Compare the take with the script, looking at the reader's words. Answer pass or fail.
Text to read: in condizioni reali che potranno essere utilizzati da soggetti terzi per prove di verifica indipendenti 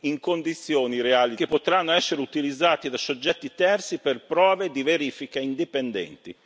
pass